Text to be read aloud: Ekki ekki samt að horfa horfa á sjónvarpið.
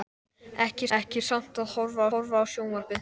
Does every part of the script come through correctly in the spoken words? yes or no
yes